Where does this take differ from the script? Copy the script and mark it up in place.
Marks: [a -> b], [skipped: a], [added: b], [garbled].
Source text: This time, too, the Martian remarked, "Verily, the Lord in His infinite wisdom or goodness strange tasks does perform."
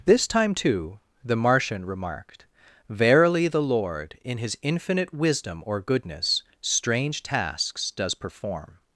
This time, too, the Martian remarked, "Verily, the Lord in His infinite wisdom or goodness strange tasks does perform."